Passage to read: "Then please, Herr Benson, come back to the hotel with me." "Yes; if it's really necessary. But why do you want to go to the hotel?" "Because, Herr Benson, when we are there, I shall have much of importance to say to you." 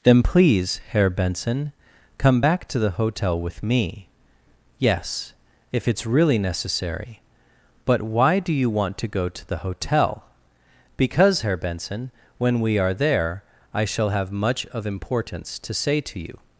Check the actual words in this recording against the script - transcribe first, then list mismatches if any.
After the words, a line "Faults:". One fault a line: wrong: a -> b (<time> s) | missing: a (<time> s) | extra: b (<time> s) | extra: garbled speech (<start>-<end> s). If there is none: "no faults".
"Then please, Herr Benson, come back to the hotel with me." "Yes; if it's really necessary. But why do you want to go to the hotel?" "Because, Herr Benson, when we are there, I shall have much of importance to say to you."
Faults:
no faults